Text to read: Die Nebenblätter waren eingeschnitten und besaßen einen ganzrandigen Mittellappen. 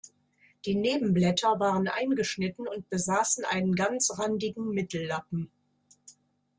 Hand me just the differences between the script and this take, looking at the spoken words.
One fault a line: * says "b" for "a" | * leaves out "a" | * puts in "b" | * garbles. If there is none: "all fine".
all fine